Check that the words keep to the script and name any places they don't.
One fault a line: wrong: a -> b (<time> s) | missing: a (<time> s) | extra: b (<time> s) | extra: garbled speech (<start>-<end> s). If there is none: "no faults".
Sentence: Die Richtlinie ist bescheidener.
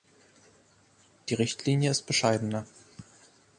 no faults